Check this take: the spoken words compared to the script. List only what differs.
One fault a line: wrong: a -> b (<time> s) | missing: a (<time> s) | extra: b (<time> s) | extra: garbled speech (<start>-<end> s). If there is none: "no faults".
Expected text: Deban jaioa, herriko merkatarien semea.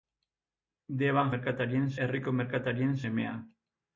wrong: jaioa -> merkatarien (1.3 s)